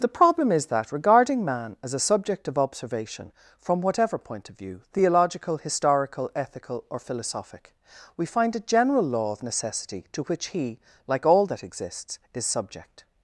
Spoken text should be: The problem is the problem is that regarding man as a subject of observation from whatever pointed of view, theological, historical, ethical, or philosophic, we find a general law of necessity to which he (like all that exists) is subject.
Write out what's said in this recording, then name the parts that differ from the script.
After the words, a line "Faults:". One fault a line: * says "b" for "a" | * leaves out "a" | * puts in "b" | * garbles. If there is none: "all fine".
The problem is that regarding man as a subject of observation from whatever point of view, theological, historical, ethical, or philosophic, we find a general law of necessity to which he (like all that exists) is subject.
Faults:
* leaves out "the problem is"
* says "point" for "pointed"